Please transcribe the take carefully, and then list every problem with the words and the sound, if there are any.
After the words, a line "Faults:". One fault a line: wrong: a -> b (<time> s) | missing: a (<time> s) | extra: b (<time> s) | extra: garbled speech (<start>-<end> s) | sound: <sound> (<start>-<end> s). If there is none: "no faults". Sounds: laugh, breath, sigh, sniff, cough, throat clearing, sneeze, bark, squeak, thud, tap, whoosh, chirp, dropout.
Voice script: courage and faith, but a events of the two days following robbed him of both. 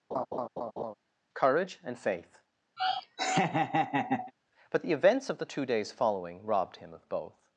courage and faith, but the events of the two days following robbed him of both.
Faults:
sound: laugh (0.1-0.9 s)
sound: laugh (2.8-4.3 s)
wrong: a -> the (4.8 s)